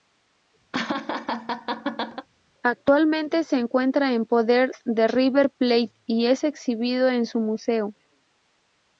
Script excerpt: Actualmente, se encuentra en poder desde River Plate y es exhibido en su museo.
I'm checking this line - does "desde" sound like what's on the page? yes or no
no